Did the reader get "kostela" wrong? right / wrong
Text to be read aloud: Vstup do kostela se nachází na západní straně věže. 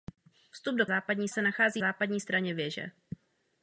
wrong